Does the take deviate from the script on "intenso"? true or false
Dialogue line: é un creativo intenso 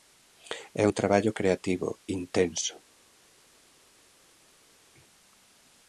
false